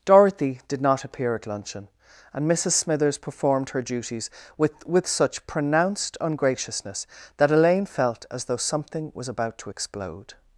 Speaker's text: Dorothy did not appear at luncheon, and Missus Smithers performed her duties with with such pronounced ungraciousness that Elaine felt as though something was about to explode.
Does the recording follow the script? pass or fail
pass